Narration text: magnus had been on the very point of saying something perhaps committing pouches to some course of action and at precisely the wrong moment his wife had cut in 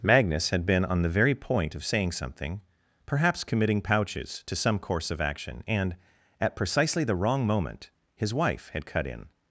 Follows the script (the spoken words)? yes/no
yes